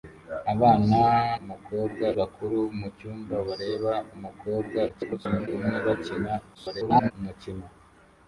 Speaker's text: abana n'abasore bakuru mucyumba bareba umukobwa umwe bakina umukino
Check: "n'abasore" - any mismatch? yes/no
yes